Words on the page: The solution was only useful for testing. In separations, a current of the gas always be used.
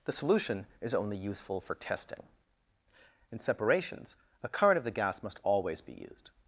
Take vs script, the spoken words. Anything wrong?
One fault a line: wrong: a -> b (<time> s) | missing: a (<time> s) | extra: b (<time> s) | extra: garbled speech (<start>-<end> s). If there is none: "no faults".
wrong: was -> is (0.8 s)
extra: must (5.2 s)